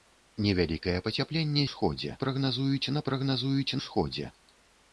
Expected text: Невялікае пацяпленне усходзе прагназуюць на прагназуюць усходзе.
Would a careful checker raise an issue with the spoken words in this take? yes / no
no